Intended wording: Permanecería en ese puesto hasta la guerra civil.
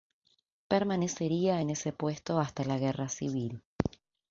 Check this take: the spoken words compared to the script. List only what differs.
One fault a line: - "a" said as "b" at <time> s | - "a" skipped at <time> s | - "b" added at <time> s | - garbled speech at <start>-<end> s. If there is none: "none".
none